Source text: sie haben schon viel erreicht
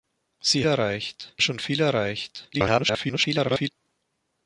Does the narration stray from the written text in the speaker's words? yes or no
yes